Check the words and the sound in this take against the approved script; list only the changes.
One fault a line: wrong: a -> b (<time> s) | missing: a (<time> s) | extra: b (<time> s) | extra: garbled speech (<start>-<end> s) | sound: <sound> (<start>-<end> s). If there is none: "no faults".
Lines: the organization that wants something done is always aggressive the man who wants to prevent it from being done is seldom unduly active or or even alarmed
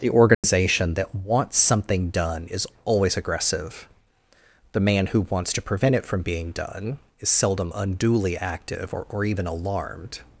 sound: dropout (0.3-0.4 s)